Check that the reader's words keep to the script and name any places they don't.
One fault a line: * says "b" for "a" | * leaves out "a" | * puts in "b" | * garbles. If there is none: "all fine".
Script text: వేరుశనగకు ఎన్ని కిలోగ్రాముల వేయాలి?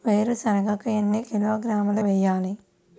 all fine